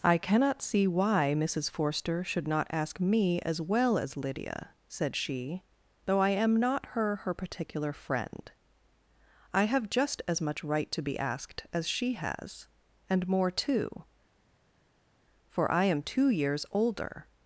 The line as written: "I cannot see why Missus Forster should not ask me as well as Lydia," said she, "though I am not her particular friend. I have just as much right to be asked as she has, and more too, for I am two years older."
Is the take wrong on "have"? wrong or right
right